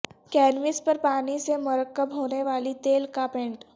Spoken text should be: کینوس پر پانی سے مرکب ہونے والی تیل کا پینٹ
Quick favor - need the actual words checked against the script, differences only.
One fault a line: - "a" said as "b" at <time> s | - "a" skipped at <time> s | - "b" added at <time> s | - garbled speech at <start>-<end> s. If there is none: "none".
none